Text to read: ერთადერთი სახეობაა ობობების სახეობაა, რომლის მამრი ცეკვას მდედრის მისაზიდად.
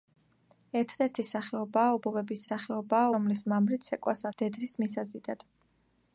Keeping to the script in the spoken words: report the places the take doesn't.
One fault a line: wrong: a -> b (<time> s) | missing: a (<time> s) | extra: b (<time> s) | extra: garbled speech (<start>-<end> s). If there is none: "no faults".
no faults